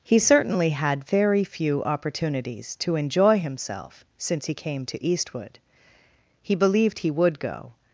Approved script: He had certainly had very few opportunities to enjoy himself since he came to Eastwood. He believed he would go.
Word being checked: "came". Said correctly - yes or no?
yes